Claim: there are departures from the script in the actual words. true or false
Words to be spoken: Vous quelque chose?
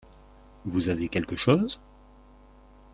true